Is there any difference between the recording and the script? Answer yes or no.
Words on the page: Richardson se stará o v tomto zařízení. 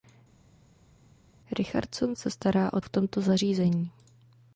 no